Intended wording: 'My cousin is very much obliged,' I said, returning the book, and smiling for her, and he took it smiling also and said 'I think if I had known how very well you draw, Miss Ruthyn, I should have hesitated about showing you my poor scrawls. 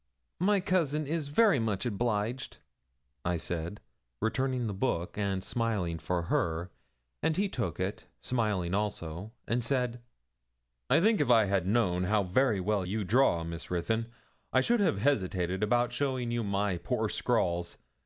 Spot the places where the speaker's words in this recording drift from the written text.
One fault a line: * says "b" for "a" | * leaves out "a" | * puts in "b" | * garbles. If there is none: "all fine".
all fine